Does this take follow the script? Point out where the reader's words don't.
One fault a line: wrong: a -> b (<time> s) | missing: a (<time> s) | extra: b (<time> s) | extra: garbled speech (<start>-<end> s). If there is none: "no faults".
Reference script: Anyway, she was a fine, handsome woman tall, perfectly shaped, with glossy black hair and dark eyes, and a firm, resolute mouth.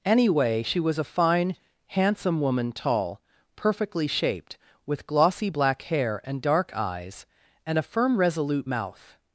no faults